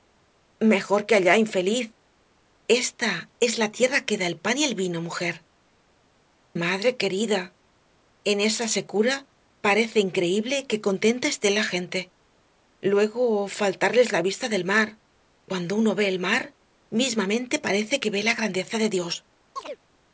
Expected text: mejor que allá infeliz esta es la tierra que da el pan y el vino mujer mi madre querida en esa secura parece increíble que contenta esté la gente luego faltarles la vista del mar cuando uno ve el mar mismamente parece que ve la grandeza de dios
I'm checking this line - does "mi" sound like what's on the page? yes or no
no